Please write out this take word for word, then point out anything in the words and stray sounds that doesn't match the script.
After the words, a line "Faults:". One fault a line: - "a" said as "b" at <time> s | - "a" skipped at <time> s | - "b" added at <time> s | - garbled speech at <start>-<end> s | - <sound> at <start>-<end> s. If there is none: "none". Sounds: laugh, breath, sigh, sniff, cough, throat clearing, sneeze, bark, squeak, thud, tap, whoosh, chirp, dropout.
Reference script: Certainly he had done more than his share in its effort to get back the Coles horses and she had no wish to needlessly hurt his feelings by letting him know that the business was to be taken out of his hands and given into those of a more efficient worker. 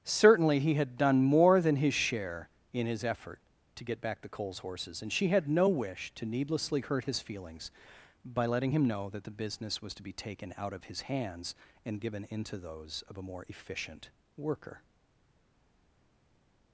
Certainly he had done more than his share in his effort to get back the Coles horses and she had no wish to needlessly hurt his feelings by letting him know that the business was to be taken out of his hands and given into those of a more efficient worker.
Faults:
- "its" said as "his" at 2.9 s